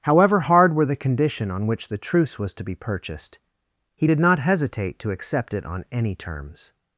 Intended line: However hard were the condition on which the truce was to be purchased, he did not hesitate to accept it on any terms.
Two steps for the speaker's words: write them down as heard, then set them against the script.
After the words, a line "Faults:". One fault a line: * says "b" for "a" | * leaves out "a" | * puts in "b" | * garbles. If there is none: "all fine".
However hard were the condition on which the truce was to be purchased, he did not hesitate to accept it on any terms.
Faults:
all fine